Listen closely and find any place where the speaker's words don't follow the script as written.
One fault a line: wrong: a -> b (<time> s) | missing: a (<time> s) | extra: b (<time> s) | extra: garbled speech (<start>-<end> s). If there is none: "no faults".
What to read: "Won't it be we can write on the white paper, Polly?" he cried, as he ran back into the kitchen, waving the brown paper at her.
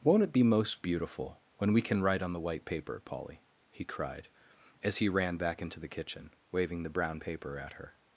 extra: most beautiful when (0.4 s)